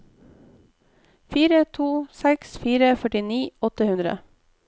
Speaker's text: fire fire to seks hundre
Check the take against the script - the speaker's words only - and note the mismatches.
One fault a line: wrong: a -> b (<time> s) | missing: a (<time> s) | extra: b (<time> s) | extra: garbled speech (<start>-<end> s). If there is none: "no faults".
extra: to seks (1.8 s)
wrong: to seks -> førtini åtte (3.0 s)